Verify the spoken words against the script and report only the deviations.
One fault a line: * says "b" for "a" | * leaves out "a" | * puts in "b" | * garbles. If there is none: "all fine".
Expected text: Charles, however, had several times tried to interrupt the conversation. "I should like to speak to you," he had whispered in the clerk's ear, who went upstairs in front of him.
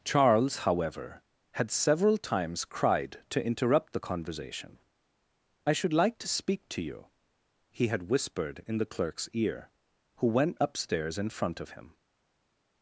* says "cried" for "tried"